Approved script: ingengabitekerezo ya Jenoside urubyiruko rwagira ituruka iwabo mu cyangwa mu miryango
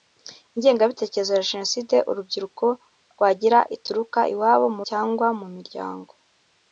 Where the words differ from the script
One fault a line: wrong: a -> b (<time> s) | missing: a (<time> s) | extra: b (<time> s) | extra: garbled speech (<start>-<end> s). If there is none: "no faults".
no faults